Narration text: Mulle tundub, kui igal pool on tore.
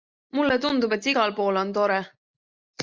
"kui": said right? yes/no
no